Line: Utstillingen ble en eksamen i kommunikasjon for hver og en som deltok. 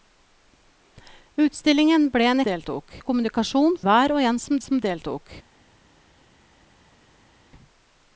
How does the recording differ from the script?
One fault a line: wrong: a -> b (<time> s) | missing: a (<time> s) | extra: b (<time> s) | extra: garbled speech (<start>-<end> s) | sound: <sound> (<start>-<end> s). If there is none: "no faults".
wrong: eksamen -> deltok (2.4 s)
missing: for (3.8 s)
extra: som (4.6 s)